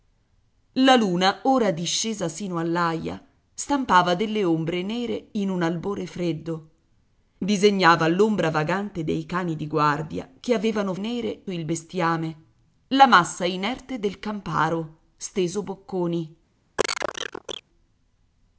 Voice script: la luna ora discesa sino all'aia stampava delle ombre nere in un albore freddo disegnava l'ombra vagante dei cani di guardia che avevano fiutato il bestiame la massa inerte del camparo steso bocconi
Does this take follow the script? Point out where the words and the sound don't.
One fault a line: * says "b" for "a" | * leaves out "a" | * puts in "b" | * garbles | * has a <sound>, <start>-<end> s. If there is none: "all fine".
* says "nere" for "fiutato"
* has a cough, 16.8-17.6 s